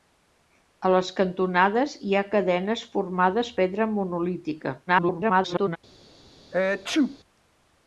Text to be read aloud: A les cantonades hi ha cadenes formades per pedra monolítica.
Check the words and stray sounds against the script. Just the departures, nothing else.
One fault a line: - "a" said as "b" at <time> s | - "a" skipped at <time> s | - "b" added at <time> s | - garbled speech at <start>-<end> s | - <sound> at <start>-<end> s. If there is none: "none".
- "per" skipped at 3.5 s
- garbled speech at 4.9-5.8 s
- sneeze at 6.5-7.2 s